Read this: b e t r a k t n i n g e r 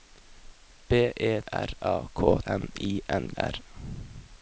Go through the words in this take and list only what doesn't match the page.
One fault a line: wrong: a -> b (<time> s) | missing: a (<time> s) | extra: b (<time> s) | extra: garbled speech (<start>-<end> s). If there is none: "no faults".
missing: t (1.4 s)
missing: t (2.4 s)
missing: g e (3.3 s)